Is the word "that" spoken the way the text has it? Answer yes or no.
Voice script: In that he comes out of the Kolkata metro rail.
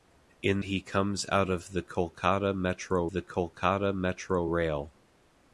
no